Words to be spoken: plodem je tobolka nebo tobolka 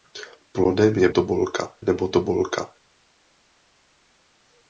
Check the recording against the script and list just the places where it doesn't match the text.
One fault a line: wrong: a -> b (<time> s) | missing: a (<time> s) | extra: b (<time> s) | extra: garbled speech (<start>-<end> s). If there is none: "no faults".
no faults